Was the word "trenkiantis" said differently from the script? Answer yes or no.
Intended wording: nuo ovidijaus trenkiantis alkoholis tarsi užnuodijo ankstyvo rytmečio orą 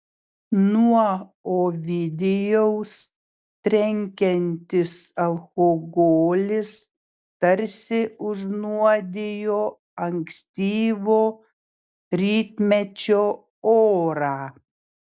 no